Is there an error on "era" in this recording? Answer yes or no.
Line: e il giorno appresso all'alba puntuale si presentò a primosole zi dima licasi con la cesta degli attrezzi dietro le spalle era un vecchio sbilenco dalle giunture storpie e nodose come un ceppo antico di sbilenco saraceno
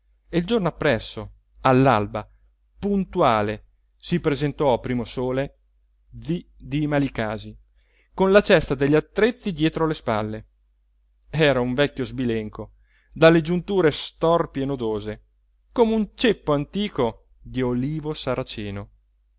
no